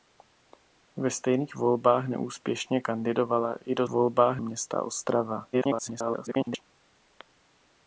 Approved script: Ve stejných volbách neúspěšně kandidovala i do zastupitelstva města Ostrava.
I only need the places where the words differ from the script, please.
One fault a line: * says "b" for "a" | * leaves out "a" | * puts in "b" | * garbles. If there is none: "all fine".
* says "volbách" for "zastupitelstva"
* garbles